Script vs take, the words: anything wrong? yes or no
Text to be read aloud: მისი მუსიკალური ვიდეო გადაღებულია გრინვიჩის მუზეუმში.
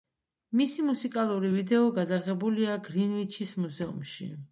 no